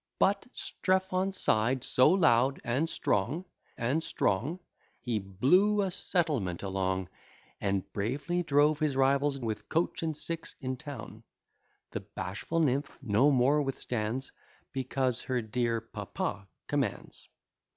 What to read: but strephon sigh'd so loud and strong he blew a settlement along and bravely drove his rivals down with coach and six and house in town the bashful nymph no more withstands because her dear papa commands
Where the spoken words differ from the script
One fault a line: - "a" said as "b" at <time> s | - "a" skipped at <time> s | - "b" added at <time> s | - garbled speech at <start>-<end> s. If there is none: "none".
- "and strong" added at 3.8 s
- "down" skipped at 9.4 s
- "and house" skipped at 10.6 s